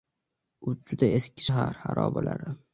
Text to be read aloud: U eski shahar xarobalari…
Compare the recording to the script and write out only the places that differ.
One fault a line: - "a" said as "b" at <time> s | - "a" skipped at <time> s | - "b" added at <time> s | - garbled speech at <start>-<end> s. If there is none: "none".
- "juda" added at 0.9 s